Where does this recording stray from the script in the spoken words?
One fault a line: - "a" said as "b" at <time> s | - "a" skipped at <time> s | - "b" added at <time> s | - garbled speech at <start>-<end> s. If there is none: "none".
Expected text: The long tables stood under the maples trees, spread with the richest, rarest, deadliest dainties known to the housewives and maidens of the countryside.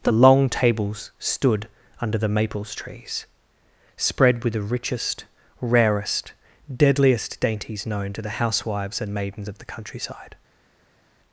none